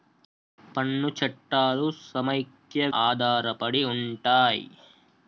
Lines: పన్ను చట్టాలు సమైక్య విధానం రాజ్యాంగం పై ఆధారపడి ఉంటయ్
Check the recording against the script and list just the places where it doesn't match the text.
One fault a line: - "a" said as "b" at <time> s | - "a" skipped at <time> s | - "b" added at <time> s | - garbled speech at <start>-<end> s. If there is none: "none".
- "విధానం రాజ్యాంగం పై" skipped at 2.9 s